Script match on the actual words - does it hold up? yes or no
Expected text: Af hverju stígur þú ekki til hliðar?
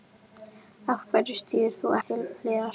no